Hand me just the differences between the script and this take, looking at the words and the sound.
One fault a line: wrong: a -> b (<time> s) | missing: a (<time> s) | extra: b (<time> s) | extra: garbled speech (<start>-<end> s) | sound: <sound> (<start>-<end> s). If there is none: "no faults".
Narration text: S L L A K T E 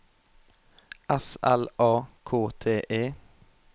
missing: L (1.7 s)